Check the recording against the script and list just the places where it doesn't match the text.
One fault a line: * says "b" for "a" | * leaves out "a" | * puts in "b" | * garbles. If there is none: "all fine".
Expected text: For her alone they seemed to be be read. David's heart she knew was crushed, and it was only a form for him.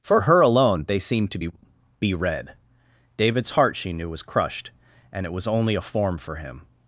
all fine